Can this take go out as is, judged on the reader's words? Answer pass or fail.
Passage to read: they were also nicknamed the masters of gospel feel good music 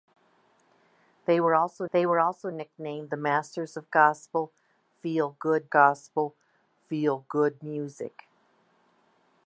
fail